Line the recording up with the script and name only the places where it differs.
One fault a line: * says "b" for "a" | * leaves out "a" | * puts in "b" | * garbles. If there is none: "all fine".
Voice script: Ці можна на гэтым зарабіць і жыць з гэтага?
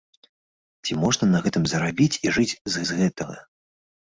* puts in "з"